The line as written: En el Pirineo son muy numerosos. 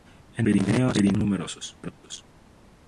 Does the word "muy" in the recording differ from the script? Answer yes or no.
yes